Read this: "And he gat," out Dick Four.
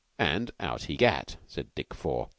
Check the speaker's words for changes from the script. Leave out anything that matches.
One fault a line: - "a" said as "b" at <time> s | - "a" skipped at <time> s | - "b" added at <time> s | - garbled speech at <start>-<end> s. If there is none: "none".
- "out" added at 0.6 s
- "out" said as "said" at 1.5 s